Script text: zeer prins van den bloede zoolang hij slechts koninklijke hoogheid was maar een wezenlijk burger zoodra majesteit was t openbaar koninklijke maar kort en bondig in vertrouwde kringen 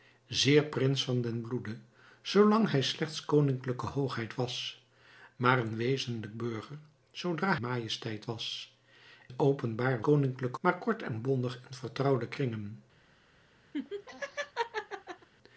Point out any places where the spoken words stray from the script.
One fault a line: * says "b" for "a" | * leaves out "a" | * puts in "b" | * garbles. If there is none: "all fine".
all fine